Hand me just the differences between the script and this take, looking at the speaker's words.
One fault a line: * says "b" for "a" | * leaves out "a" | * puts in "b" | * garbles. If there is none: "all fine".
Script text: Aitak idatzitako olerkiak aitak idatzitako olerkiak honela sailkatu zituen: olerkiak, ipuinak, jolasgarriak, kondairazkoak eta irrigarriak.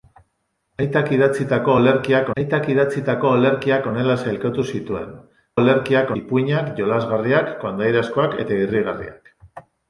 all fine